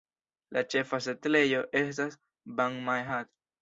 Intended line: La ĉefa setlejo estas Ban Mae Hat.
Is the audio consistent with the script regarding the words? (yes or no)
yes